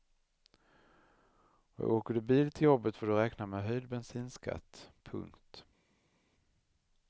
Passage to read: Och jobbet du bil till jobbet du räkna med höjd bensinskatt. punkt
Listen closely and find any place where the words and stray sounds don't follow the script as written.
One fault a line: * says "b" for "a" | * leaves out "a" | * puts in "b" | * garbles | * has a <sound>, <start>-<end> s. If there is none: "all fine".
* says "åker" for "jobbet"
* puts in "får"